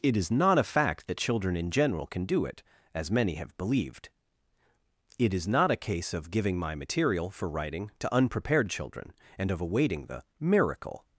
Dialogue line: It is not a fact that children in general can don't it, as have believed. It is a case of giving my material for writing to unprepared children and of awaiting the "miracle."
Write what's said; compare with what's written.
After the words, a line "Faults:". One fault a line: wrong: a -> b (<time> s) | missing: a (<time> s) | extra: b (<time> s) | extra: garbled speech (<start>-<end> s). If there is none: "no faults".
It is not a fact that children in general can do it, as many have believed. It is not a case of giving my material for writing to unprepared children and of awaiting the "miracle."
Faults:
wrong: don't -> do (2.2 s)
extra: many (3.1 s)
extra: not (5.5 s)